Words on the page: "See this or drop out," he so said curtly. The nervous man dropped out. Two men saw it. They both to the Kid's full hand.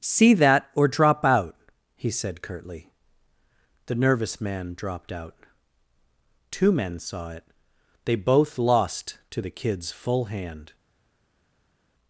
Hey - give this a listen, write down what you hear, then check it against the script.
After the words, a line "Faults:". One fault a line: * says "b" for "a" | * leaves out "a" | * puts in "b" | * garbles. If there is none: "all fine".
"See that or drop out," he said curtly. The nervous man dropped out. Two men saw it. They both lost to the Kid's full hand.
Faults:
* says "that" for "this"
* leaves out "so"
* puts in "lost"